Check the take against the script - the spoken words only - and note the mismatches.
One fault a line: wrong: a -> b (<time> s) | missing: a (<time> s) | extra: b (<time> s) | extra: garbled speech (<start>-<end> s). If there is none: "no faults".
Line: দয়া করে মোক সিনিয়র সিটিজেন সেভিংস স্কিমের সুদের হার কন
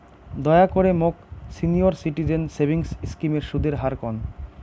no faults